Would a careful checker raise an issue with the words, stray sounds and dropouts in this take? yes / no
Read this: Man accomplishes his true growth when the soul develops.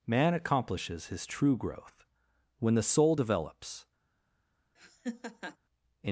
yes